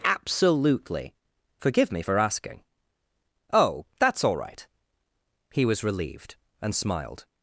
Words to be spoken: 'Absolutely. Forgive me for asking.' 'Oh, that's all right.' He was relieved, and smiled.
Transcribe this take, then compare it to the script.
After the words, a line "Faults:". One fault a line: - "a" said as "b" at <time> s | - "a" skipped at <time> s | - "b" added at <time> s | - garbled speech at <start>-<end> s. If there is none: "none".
'Absolutely. Forgive me for asking.' 'Oh, that's all right.' He was relieved, and smiled.
Faults:
none